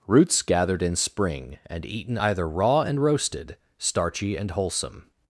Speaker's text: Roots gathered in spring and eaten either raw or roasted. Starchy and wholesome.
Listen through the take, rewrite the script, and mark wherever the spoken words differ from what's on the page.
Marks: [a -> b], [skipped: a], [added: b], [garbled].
Roots gathered in spring and eaten either raw [or -> and] roasted. Starchy and wholesome.